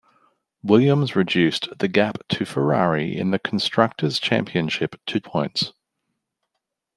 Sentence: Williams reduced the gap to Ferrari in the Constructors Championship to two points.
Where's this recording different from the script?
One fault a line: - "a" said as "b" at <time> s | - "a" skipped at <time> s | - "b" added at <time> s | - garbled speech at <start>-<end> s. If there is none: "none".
- "two" skipped at 5.2 s